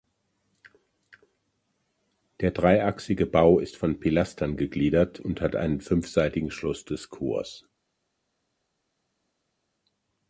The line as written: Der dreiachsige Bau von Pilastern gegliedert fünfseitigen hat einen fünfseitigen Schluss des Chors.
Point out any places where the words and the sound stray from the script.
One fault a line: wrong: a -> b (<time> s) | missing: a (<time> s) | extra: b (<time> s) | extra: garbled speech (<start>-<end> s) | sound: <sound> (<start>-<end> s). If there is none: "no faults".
extra: ist (3.6 s)
wrong: fünfseitigen -> und (5.2 s)